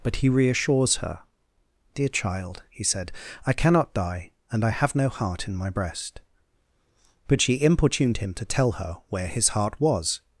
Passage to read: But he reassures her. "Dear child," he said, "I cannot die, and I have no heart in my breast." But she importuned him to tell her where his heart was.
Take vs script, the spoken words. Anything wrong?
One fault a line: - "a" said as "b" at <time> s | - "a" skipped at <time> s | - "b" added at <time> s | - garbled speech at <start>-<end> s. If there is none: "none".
none